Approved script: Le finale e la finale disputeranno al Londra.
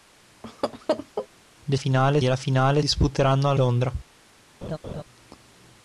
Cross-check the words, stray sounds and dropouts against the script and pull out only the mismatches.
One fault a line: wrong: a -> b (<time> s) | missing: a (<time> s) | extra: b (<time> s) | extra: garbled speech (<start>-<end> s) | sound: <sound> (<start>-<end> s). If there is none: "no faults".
sound: laugh (0.4-1.3 s)
sound: laugh (4.6-5.0 s)